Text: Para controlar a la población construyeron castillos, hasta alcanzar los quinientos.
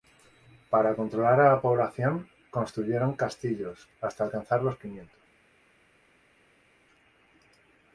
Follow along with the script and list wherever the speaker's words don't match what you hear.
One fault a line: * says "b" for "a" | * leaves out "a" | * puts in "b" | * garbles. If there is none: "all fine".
all fine